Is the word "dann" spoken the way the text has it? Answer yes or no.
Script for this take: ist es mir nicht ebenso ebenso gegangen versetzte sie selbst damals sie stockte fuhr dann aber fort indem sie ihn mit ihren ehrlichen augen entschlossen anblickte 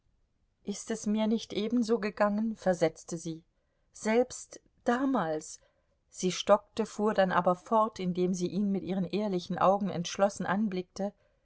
yes